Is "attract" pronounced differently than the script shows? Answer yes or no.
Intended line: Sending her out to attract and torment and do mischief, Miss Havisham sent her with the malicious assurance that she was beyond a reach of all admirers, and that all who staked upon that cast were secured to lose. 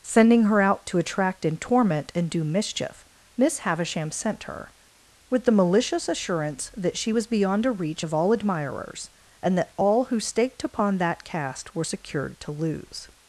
no